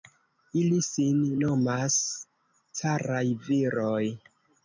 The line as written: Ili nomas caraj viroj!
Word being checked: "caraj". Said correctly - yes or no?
yes